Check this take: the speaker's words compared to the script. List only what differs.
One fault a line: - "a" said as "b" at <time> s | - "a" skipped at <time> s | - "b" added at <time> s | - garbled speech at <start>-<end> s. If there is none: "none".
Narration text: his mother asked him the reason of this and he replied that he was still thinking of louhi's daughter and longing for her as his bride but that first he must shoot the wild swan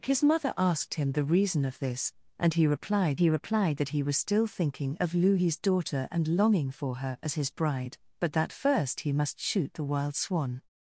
- "he replied" added at 3.2 s